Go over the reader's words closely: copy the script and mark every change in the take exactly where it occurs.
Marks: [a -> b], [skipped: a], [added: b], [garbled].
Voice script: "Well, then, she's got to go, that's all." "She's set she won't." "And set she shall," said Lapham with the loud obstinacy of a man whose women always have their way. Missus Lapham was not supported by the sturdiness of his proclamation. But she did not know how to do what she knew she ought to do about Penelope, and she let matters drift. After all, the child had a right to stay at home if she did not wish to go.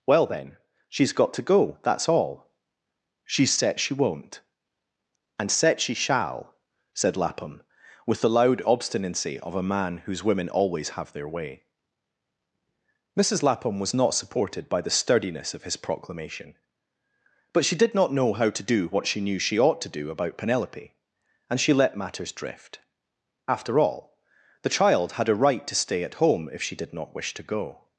"Well, then, she's got to go, that's all." "She's set she won't." "And set she shall," said Lapham with the loud obstinacy of a man whose women always have their way. Missus Lapham was not supported by the sturdiness of his proclamation. But she did not know how to do what she knew she ought to do about Penelope, and she let matters drift. After all, the child had a right to stay at home if she did not wish to go.